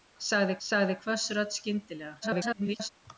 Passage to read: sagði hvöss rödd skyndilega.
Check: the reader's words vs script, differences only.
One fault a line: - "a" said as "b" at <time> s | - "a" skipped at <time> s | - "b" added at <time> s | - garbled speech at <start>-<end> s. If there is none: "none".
- "sagði" added at 0.7 s
- garbled speech at 2.2-2.9 s